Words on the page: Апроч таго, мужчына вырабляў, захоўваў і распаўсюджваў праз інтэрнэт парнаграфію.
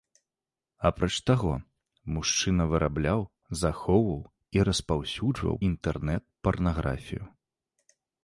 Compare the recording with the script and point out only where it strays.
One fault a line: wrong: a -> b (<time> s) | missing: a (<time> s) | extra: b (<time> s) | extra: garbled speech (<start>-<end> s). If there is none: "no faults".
missing: праз (5.5 s)